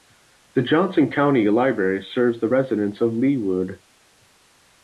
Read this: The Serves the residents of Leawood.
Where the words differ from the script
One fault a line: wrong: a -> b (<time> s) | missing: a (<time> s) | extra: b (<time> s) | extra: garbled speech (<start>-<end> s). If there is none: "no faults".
extra: Johnson County Library (0.6 s)